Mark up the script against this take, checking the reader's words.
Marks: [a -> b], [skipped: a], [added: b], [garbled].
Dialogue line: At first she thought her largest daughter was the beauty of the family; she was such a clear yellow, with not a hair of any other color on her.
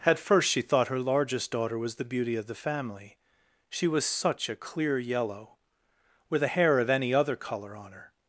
At first she thought her largest daughter was the beauty of the family; she was such a clear yellow, with [skipped: not] a hair of any other color on her.